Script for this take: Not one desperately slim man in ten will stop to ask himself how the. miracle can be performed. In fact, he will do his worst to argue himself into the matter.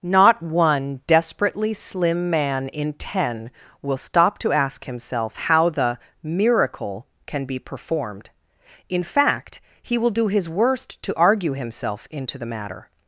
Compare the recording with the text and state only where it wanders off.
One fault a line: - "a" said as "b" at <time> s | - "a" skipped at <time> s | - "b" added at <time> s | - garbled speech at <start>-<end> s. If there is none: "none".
none